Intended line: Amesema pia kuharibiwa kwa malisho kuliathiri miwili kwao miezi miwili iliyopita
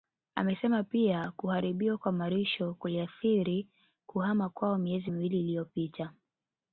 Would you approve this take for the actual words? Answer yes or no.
no